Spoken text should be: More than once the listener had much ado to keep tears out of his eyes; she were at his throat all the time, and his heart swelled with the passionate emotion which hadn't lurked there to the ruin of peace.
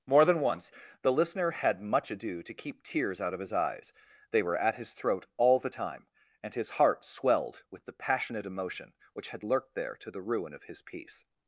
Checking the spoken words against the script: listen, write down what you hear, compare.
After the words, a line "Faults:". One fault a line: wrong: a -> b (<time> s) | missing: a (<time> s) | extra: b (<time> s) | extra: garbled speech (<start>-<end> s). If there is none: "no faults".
More than once the listener had much ado to keep tears out of his eyes; they were at his throat all the time, and his heart swelled with the passionate emotion which had lurked there to the ruin of his peace.
Faults:
wrong: she -> they (4.3 s)
wrong: hadn't -> had (9.3 s)
extra: his (10.7 s)